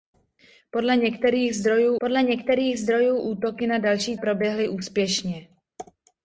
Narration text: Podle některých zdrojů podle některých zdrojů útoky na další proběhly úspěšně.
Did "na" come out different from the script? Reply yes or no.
no